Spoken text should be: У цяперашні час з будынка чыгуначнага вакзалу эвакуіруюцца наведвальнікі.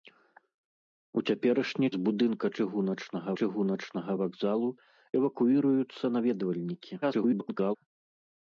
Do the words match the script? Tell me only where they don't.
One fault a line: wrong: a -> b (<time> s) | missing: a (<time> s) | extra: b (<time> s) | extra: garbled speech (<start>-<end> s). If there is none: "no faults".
missing: час (1.9 s)
extra: чыгуначнага (3.4 s)
extra: garbled speech (7.0-7.8 s)